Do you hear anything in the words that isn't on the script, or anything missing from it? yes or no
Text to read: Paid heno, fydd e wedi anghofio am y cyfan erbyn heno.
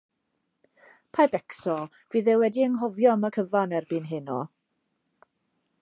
yes